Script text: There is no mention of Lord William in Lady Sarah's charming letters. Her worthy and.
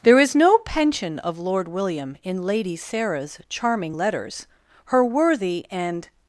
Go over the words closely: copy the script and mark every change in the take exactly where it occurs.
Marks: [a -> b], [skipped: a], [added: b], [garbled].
There is no [mention -> pension] of Lord William in Lady Sarah's charming letters. Her worthy and.